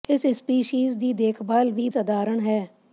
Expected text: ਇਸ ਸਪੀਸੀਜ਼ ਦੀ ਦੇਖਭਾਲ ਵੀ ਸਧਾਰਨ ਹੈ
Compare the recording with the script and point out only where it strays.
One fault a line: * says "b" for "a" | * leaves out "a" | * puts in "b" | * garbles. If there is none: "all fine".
all fine